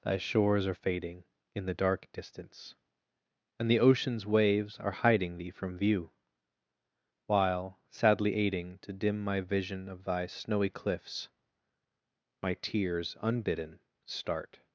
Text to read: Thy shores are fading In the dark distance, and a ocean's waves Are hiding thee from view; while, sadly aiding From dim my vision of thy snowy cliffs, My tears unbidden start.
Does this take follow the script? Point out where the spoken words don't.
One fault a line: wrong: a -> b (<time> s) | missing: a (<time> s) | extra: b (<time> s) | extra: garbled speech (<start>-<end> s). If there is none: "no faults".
wrong: a -> the (3.7 s)
wrong: From -> To (8.8 s)